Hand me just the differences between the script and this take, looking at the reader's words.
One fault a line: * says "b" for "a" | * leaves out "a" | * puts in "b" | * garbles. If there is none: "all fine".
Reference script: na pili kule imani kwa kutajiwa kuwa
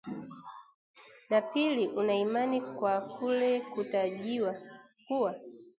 * says "una" for "kule"
* puts in "kule"